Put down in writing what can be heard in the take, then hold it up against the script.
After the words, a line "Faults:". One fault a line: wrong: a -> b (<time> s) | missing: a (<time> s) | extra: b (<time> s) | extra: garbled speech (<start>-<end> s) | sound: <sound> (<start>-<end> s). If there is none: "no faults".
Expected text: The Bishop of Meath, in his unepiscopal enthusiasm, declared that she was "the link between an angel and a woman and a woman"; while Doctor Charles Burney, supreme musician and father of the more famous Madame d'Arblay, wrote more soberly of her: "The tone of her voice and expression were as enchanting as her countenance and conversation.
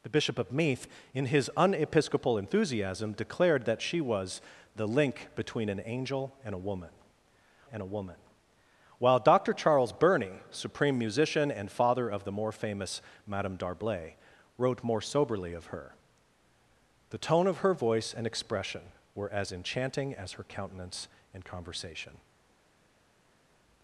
The Bishop of Meath, in his unepiscopal enthusiasm, declared that she was "the link between an angel and a woman and a woman"; while Doctor Charles Burney, supreme musician and father of the more famous Madame d'Arblay, wrote more soberly of her: "The tone of her voice and expression were as enchanting as her countenance and conversation.
Faults:
no faults